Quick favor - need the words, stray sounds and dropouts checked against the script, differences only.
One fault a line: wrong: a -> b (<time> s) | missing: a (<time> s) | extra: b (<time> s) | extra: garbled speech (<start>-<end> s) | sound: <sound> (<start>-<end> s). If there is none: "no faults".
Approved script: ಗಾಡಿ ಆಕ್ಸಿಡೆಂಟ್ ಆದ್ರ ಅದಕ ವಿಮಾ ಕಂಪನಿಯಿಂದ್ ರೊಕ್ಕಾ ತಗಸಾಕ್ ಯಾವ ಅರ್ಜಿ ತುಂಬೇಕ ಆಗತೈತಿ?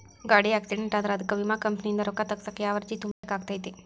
sound: dropout (3.1-3.2 s)